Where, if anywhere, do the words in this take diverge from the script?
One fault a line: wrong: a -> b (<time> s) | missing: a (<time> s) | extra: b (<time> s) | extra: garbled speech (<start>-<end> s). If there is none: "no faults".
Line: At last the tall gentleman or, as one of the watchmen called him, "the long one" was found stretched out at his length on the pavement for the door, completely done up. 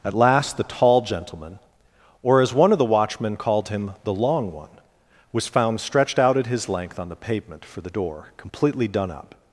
no faults